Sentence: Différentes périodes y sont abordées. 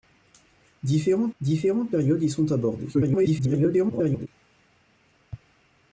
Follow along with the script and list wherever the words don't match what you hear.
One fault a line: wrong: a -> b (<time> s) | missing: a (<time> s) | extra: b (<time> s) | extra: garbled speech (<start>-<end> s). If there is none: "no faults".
extra: différentes (1.4 s)
extra: garbled speech (2.9-4.3 s)